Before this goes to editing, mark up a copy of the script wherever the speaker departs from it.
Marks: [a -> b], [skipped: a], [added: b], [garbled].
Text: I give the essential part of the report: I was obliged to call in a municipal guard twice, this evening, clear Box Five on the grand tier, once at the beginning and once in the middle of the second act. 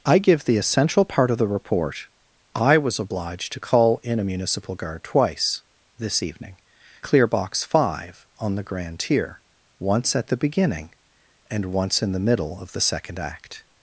I give the essential part of the report: I was obliged to call in a municipal guard twice, this evening, clear Box Five on the grand tier, once at the beginning and once in the middle of the second act.